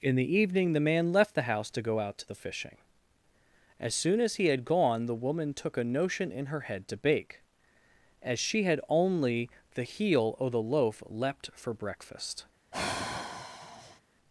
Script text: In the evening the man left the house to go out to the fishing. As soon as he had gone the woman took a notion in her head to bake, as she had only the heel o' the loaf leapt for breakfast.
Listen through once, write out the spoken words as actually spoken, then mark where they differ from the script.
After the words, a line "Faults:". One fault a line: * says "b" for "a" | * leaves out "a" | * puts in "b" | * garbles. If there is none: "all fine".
In the evening the man left the house to go out to the fishing. As soon as he had gone the woman took a notion in her head to bake, as she had only the heel o' the loaf leapt for breakfast.
Faults:
all fine